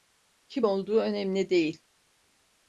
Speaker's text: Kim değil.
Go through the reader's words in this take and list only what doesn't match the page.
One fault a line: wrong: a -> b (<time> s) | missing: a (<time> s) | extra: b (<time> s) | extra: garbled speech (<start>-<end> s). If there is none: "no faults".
extra: olduğu önemli (0.6 s)